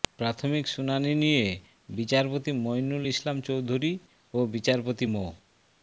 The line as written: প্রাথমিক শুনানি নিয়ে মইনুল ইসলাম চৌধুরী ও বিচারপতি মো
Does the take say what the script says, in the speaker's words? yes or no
no